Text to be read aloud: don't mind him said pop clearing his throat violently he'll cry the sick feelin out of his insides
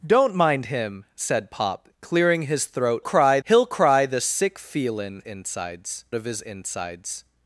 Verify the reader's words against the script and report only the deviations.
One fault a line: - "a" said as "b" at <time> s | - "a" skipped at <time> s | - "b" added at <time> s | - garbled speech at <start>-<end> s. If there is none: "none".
- "violently" said as "cry" at 3.0 s
- "out" said as "insides" at 5.2 s